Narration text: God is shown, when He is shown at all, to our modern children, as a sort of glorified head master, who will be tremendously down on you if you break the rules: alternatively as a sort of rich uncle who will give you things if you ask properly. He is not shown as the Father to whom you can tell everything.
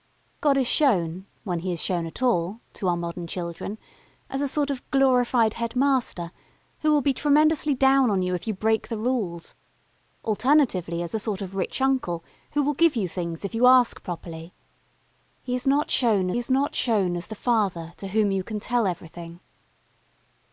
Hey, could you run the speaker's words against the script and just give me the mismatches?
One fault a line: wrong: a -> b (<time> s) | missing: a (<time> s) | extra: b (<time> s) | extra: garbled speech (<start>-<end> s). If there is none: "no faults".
extra: is not shown (16.4 s)